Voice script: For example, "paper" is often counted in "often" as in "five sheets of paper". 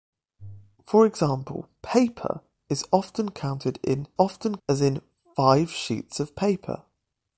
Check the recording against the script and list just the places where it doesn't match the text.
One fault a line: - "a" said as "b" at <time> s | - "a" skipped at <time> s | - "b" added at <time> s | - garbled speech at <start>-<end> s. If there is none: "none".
none